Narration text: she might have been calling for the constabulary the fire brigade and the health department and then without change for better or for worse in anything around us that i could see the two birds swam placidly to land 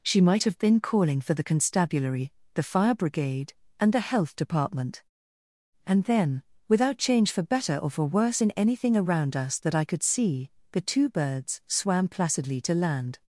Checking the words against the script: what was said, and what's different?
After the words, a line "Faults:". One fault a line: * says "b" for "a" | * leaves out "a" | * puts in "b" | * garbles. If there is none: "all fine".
she might have been calling for the constabulary the fire brigade and the health department and then without change for better or for worse in anything around us that i could see the two birds swam placidly to land
Faults:
all fine